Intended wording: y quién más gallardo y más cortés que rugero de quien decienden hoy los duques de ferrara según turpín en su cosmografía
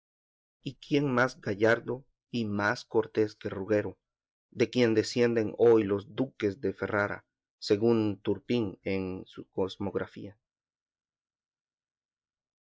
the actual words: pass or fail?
pass